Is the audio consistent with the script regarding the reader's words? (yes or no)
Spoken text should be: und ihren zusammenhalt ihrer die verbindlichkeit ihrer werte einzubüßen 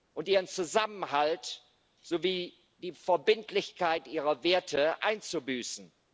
no